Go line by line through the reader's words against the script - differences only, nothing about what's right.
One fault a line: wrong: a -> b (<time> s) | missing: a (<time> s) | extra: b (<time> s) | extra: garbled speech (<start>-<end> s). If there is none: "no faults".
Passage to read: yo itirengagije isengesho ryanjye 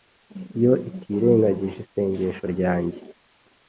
no faults